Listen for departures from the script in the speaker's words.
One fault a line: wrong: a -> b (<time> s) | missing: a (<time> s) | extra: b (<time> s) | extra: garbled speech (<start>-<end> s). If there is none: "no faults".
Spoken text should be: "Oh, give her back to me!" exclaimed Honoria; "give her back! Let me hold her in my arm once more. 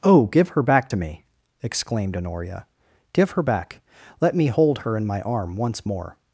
no faults